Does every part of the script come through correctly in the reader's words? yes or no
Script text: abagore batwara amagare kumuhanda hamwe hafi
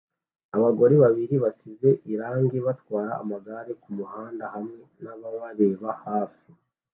no